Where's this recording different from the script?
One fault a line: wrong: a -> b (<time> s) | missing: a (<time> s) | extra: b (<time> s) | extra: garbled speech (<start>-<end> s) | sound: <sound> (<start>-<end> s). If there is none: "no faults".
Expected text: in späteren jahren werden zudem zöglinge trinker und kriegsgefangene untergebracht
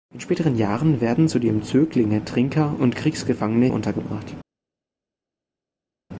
no faults